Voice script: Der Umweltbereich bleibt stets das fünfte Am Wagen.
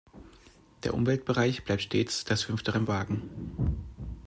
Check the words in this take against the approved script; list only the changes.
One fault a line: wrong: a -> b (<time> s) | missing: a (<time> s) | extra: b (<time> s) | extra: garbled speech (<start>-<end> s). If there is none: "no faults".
no faults